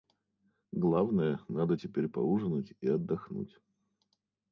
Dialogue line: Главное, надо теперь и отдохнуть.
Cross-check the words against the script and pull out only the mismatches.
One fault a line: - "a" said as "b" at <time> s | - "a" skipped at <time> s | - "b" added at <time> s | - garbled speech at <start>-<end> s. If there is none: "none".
- "поужинать" added at 2.1 s